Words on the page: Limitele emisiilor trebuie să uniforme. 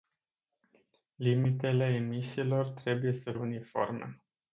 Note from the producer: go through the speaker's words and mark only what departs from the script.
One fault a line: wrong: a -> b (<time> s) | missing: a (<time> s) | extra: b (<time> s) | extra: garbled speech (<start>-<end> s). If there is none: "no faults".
no faults